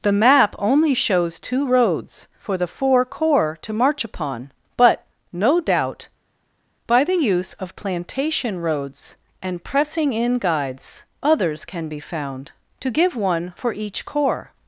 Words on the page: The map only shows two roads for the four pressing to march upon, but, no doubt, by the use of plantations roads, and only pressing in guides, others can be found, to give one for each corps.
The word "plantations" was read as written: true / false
false